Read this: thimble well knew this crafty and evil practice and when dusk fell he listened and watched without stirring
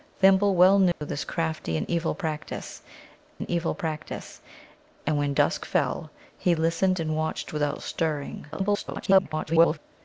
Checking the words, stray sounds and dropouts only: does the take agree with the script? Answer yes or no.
no